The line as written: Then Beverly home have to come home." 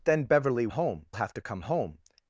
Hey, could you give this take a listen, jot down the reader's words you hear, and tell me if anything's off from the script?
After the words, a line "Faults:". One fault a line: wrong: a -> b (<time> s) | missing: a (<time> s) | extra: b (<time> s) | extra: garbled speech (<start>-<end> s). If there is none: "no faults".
Then Beverly home have to come home."
Faults:
no faults